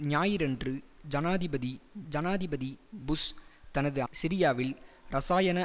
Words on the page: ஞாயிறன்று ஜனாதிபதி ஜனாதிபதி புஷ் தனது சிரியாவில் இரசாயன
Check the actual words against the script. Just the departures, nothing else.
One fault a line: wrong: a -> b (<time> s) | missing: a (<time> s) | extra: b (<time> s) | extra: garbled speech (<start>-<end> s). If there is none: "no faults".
no faults